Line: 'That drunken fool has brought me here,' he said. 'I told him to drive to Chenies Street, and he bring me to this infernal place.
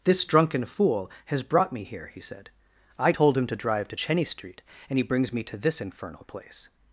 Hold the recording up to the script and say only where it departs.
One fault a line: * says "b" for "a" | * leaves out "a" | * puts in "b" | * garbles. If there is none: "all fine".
* says "This" for "That"
* says "brings" for "bring"